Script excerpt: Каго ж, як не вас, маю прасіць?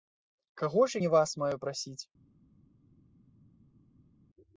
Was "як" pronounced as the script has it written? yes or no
no